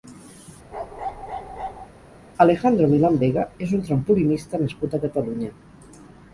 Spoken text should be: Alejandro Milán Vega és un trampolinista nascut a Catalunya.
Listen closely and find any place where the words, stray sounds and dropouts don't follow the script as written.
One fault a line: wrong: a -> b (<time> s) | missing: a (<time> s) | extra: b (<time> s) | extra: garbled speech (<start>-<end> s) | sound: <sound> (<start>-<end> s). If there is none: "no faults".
sound: bark (0.7-1.9 s)